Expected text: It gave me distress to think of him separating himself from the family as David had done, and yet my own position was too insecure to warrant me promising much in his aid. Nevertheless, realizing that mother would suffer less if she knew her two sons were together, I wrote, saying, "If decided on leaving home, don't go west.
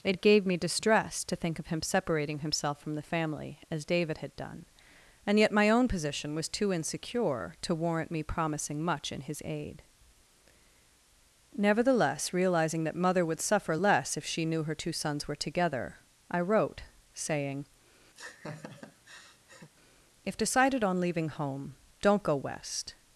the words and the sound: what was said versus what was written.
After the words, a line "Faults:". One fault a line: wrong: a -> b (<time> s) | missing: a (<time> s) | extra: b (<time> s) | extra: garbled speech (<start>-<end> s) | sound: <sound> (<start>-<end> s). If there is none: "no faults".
It gave me distress to think of him separating himself from the family as David had done, and yet my own position was too insecure to warrant me promising much in his aid. Nevertheless, realizing that mother would suffer less if she knew her two sons were together, I wrote, saying, "If decided on leaving home, don't go west.
Faults:
sound: laugh (18.1-19.7 s)